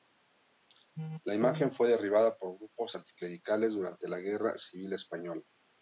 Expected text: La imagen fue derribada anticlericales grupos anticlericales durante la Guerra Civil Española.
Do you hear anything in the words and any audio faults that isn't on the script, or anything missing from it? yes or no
yes